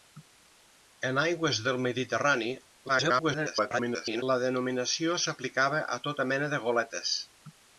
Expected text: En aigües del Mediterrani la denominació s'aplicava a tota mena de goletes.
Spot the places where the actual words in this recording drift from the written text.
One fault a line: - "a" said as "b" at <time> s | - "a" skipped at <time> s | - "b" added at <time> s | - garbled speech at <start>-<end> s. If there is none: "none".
- garbled speech at 2.9-4.2 s